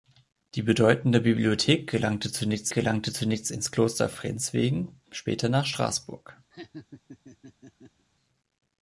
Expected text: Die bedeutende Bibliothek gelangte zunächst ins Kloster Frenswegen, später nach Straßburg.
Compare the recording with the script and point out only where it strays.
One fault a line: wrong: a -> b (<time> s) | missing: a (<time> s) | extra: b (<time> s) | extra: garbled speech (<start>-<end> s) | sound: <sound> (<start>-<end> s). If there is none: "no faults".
extra: gelangte zunächst (2.7 s)
sound: laugh (6.5-8.1 s)